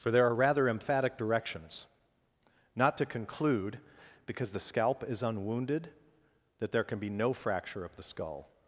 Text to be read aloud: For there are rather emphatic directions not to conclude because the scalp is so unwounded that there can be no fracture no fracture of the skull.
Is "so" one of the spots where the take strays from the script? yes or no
yes